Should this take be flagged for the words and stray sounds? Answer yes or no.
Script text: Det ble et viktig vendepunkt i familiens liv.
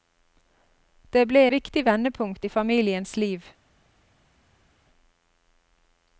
yes